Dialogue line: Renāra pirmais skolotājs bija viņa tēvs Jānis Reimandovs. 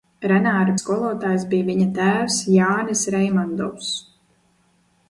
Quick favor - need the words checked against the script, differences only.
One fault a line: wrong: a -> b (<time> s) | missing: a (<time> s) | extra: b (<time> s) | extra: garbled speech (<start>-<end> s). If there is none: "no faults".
missing: pirmais (0.7 s)